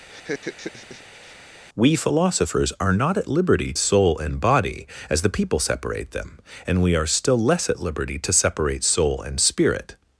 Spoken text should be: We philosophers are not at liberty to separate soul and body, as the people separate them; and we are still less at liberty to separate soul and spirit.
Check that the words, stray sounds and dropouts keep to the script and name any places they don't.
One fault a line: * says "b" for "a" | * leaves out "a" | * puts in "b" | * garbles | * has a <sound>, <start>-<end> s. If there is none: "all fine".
* has a laugh, 0.1-1.4 s
* leaves out "to separate"